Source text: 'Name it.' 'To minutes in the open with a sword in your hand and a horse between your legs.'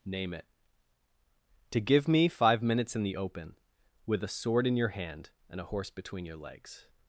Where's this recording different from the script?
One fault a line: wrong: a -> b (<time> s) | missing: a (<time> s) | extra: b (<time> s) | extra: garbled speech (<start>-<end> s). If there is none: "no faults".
extra: give me five (1.8 s)